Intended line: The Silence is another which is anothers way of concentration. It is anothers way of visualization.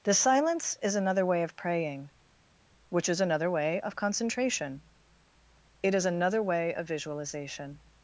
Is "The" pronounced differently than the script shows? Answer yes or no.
no